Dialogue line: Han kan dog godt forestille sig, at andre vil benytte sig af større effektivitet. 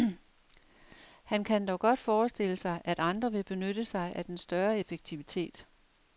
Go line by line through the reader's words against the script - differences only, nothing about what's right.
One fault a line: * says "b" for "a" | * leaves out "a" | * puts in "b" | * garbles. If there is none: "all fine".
* puts in "den"